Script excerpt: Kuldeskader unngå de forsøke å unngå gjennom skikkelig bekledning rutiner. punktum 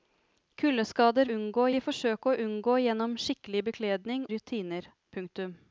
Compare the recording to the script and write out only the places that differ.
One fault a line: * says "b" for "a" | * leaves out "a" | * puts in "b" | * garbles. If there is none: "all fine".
all fine